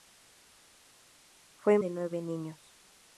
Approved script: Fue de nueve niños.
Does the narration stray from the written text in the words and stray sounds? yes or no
no